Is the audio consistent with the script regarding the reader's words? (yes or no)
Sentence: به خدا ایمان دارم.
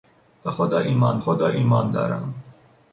no